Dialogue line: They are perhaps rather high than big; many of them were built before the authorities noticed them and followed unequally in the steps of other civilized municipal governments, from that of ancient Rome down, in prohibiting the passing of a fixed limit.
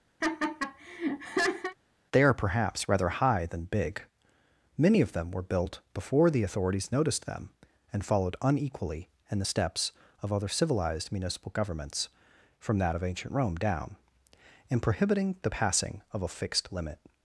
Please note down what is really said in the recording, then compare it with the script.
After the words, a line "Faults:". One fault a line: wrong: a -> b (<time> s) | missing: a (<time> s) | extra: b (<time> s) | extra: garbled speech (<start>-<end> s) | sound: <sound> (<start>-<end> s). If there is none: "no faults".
They are perhaps rather high than big; many of them were built before the authorities noticed them and followed unequally in the steps of other civilized municipal governments, from that of ancient Rome down, in prohibiting the passing of a fixed limit.
Faults:
sound: laugh (0.2-1.8 s)